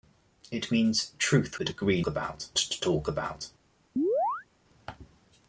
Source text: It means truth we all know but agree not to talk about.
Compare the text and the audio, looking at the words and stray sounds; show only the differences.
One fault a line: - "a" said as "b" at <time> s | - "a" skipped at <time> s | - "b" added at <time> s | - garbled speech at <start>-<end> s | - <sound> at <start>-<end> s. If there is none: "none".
- "we all know" skipped at 1.6 s
- "not" said as "about" at 2.1 s
- chirp at 4.0-4.5 s